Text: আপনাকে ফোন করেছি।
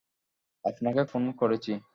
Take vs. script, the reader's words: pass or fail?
pass